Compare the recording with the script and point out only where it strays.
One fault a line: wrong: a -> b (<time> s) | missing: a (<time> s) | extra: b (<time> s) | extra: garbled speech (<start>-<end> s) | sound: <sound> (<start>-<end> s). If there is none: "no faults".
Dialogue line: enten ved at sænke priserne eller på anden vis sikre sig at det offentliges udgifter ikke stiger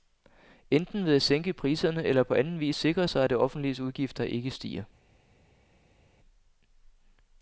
no faults